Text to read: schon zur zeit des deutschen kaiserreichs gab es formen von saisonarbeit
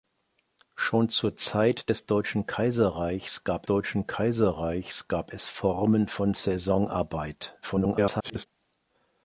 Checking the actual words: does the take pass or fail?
fail